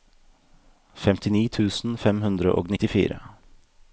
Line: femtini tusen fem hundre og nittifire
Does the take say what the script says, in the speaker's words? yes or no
yes